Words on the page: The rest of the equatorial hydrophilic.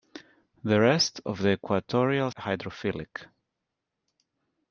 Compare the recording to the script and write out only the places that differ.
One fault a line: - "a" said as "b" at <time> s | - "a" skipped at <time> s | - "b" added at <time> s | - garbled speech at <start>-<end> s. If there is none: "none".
none